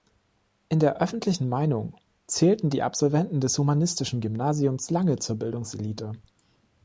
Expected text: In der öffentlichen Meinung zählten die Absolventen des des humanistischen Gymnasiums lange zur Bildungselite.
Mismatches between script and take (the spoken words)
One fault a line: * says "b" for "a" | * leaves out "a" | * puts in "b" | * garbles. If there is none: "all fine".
* leaves out "des"